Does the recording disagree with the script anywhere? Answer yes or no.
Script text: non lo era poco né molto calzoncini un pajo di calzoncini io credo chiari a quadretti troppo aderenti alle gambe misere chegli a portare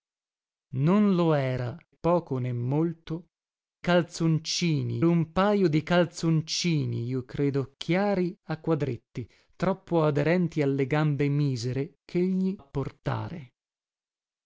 no